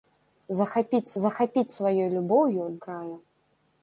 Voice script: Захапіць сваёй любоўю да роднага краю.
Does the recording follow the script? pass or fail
fail